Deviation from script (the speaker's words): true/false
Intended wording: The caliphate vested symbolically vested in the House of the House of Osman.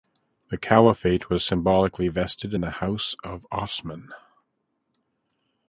true